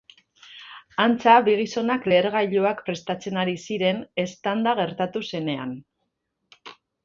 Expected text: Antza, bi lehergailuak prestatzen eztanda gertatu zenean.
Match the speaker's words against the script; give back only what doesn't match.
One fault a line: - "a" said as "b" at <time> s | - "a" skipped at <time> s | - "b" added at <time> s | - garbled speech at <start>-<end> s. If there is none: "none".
- "gizonak" added at 1.6 s
- "ari ziren" added at 3.5 s